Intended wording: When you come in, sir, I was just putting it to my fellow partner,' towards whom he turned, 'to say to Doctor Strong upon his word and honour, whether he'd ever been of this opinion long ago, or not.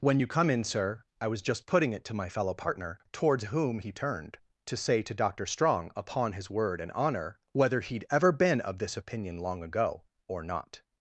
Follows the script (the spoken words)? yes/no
yes